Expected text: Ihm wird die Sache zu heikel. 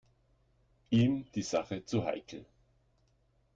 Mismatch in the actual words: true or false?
true